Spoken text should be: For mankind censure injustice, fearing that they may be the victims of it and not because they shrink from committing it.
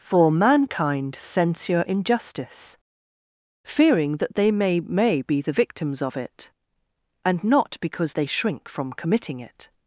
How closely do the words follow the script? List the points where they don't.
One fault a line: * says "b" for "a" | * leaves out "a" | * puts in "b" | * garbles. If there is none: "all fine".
* puts in "may"